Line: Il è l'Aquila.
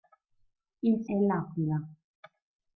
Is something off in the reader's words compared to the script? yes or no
no